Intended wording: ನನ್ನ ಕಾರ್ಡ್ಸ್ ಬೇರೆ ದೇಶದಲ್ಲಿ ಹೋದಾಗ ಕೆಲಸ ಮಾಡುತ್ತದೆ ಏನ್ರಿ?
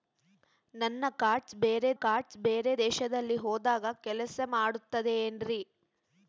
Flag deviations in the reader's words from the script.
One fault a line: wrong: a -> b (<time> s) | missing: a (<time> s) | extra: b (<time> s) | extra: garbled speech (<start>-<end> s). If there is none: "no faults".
extra: ಕಾರ್ಡ್ಸ್ ಬೇರೆ (2.0 s)